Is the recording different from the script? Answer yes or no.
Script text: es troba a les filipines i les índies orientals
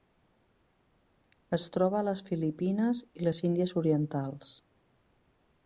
no